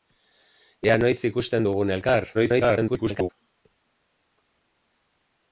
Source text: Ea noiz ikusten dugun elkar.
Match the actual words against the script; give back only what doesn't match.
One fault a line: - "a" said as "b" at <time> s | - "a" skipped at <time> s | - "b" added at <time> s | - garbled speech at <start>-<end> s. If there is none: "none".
- garbled speech at 2.3-3.3 s